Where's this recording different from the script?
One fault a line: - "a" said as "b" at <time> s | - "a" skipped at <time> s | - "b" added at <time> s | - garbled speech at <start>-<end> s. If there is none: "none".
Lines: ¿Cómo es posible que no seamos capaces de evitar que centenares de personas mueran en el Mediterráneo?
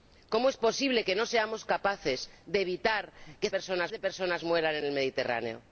- "centenares" said as "personas" at 3.5 s